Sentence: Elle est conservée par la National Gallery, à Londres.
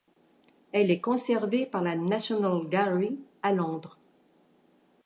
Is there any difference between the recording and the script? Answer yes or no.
no